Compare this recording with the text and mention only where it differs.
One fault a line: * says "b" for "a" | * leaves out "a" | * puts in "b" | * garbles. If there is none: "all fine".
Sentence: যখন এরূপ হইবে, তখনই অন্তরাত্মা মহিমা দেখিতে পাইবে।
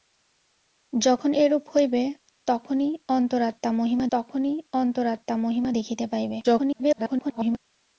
* puts in "তখনই অন্তরাত্মা মহিমা"
* garbles